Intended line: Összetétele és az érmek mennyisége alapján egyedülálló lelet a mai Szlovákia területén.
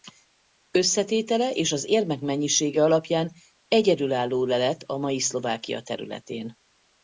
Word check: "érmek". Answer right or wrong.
right